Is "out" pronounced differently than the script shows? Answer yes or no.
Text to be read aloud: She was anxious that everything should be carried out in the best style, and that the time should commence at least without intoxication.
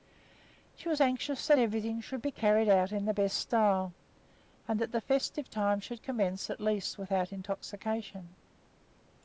no